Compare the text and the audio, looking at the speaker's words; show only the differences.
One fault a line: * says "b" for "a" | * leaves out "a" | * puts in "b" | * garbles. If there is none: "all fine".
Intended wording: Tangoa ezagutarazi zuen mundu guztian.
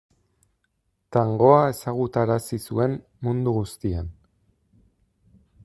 all fine